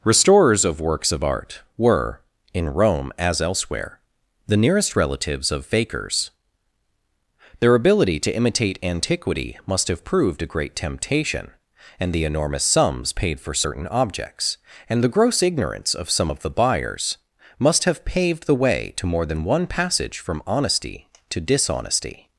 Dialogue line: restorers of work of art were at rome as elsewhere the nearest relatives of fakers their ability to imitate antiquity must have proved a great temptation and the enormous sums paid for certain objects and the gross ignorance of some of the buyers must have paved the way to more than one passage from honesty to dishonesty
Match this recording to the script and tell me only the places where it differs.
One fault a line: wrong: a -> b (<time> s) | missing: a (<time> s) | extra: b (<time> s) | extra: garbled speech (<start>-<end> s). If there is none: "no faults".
wrong: work -> works (0.8 s)
wrong: at -> in (2.5 s)